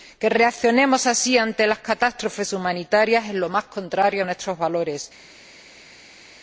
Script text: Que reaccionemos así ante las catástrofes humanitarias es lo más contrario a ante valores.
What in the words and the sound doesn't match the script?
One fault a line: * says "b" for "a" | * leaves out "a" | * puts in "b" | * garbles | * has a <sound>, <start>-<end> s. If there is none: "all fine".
* says "nuestros" for "ante"